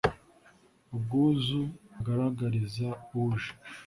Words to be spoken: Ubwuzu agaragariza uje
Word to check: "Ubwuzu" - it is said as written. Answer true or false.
true